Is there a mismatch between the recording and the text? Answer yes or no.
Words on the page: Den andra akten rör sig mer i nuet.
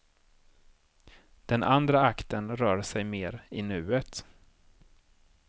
no